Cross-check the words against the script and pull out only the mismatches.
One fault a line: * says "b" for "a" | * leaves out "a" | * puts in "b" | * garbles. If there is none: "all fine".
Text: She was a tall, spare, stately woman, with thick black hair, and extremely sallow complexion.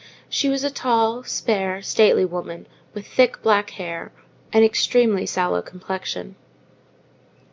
all fine